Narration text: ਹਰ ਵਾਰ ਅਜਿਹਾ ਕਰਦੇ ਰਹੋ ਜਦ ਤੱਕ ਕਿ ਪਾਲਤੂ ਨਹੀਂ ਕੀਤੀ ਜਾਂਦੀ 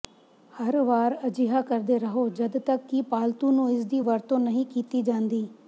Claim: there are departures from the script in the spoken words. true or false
true